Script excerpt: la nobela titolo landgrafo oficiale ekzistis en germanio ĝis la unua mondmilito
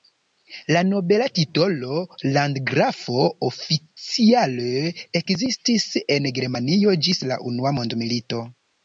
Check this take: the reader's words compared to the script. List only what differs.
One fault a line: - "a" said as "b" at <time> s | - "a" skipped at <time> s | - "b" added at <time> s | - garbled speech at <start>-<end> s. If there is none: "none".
none